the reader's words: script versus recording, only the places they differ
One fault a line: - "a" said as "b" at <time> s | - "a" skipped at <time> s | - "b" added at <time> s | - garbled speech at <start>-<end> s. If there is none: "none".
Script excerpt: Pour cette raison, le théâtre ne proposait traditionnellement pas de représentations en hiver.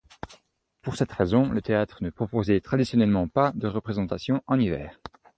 none